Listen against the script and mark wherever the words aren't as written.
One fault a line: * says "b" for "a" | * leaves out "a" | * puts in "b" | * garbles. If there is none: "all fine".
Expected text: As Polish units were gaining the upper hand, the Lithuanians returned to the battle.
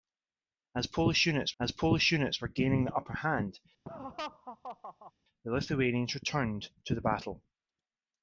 * puts in "as Polish units"